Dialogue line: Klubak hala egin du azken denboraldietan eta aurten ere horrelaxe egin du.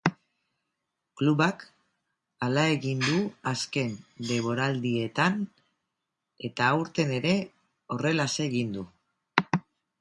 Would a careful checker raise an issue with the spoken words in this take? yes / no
no